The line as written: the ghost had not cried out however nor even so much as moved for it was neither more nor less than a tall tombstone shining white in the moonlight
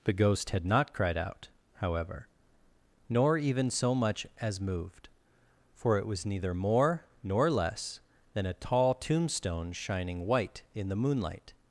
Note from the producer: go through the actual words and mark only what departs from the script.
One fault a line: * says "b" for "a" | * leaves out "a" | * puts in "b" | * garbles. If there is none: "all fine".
all fine